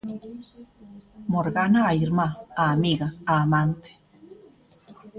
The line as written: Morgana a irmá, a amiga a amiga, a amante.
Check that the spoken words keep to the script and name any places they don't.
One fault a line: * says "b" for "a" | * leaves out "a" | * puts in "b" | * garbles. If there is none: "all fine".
* leaves out "amiga a"